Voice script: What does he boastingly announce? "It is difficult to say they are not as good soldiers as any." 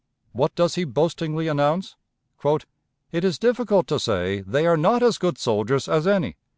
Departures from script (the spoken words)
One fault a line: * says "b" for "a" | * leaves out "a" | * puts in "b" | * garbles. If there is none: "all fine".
all fine